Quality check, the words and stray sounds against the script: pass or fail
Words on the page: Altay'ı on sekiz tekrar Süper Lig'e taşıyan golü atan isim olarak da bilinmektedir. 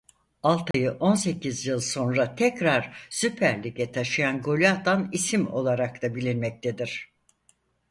fail